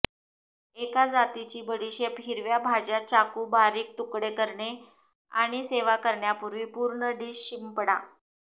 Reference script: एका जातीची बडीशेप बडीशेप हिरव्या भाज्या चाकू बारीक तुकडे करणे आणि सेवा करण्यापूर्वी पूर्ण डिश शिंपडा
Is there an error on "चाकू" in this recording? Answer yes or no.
no